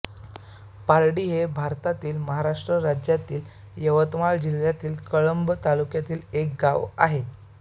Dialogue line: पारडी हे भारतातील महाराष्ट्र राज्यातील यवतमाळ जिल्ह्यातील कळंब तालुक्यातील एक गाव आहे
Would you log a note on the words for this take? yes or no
no